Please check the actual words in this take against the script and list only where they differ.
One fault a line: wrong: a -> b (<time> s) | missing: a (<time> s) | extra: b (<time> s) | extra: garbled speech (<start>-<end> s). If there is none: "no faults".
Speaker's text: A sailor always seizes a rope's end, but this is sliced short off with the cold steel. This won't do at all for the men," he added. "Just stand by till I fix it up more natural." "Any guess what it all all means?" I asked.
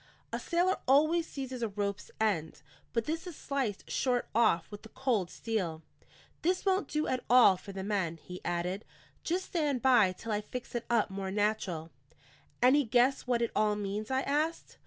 missing: all (13.8 s)